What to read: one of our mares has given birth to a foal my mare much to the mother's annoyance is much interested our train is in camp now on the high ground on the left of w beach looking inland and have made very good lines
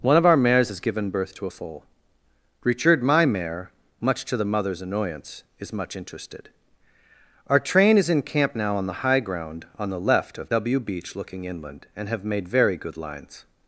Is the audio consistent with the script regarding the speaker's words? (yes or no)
no